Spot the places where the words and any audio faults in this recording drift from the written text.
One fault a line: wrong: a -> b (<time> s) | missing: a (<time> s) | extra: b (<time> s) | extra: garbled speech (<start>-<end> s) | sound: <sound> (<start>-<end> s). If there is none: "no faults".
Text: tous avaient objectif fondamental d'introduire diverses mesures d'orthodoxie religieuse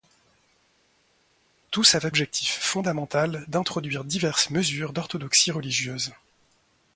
no faults